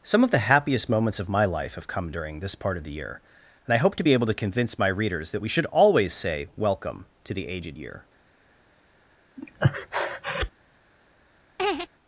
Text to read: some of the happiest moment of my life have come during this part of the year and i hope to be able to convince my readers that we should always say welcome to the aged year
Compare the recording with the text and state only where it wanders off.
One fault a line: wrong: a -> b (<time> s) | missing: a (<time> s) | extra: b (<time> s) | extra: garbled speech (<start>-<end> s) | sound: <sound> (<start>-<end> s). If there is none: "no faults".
wrong: moment -> moments (0.9 s)
sound: breath (9.4-10.5 s)
sound: laugh (11.6-11.9 s)